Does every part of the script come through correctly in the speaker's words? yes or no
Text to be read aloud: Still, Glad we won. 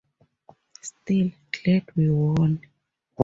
yes